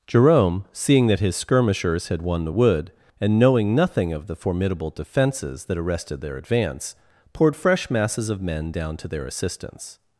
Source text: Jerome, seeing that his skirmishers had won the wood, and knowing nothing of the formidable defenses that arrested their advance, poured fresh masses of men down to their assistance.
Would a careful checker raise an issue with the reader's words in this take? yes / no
no